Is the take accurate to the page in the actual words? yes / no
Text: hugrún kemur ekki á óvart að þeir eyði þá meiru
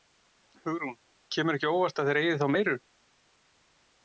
yes